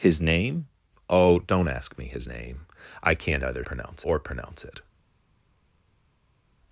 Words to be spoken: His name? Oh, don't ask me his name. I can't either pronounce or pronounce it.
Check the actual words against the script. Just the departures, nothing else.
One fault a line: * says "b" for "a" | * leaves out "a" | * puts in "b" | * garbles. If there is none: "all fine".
all fine